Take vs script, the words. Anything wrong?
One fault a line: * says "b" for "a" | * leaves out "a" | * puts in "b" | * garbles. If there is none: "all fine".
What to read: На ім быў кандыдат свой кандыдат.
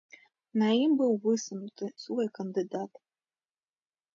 * says "высунуты" for "кандыдат"